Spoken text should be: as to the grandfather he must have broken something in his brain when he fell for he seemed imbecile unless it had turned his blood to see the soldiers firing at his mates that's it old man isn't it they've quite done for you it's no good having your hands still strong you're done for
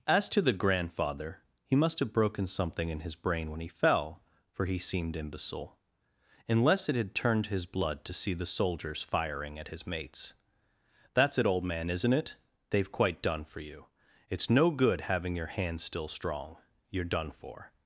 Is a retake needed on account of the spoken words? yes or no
no